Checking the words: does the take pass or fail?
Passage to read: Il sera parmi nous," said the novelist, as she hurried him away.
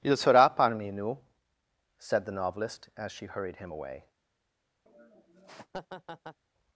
pass